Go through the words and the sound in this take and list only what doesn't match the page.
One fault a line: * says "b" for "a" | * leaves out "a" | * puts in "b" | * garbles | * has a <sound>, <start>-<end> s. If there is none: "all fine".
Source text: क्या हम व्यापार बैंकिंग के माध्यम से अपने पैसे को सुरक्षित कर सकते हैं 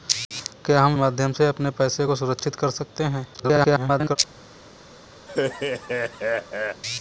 * leaves out "व्यापार बैंकिंग के"
* garbles
* has a laugh, 5.3-6.8 s